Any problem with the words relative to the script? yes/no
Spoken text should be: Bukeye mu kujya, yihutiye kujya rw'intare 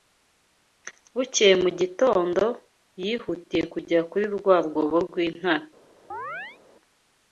yes